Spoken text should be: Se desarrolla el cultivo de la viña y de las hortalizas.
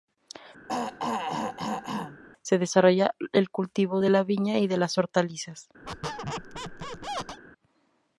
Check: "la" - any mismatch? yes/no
no